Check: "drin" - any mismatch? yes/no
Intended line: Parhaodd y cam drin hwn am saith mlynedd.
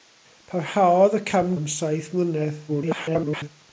yes